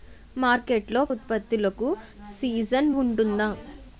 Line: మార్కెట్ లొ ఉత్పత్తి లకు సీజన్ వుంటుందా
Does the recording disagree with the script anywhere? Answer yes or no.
no